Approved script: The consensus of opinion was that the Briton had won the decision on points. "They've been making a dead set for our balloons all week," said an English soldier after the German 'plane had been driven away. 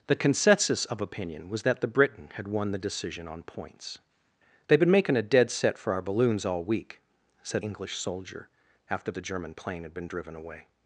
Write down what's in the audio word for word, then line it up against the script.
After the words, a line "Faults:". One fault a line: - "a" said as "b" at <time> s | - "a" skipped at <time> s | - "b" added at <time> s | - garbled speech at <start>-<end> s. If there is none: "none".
The consensus of opinion was that the Briton had won the decision on points. "They've been making a dead set for our balloons all week," said English soldier after the German 'plane had been driven away.
Faults:
- "an" skipped at 7.6 s